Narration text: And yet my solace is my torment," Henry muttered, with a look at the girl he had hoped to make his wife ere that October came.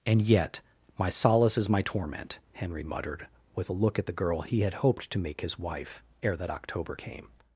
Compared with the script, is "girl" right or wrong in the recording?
right